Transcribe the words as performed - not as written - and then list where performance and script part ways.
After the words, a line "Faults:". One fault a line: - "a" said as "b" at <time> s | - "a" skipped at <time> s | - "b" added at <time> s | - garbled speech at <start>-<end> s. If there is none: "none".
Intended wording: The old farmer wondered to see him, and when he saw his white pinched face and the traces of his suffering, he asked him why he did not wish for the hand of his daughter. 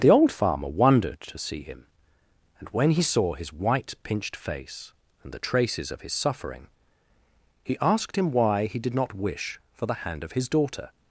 The old farmer wondered to see him, and when he saw his white pinched face and the traces of his suffering, he asked him why he did not wish for the hand of his daughter.
Faults:
none